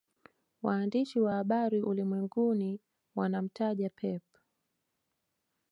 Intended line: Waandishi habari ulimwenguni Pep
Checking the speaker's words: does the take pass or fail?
fail